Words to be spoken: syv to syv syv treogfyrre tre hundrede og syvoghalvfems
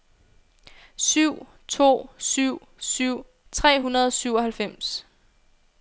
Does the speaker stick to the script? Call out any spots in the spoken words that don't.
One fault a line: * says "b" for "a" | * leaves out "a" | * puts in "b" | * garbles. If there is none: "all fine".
* leaves out "treogfyrre"